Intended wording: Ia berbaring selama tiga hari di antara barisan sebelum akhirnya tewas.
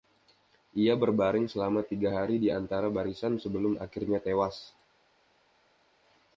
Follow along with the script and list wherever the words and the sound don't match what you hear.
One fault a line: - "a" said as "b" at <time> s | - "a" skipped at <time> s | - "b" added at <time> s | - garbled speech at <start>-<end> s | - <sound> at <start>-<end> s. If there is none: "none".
none